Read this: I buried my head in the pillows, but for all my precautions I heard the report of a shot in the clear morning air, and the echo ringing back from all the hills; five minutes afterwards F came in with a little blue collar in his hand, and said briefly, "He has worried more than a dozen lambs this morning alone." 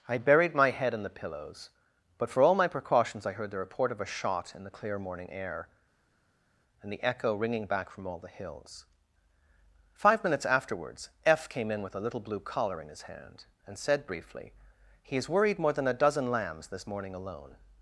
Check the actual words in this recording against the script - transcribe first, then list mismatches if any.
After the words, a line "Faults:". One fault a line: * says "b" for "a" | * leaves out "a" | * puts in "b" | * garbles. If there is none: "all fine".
I buried my head in the pillows, but for all my precautions I heard the report of a shot in the clear morning air, and the echo ringing back from all the hills; five minutes afterwards F came in with a little blue collar in his hand, and said briefly, "He has worried more than a dozen lambs this morning alone."
Faults:
all fine